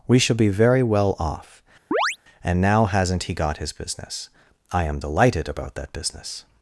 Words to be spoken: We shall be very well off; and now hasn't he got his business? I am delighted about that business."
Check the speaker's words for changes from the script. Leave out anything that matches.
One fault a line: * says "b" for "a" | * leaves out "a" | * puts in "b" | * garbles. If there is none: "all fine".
all fine